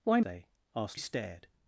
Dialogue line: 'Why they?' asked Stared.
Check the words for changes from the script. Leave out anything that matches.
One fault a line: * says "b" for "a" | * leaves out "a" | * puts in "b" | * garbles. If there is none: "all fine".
all fine